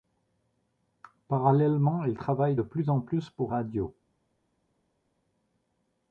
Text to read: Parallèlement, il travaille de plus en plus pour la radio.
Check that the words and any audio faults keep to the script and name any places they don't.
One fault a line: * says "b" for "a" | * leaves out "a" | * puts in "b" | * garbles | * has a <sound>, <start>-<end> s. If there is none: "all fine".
* leaves out "la"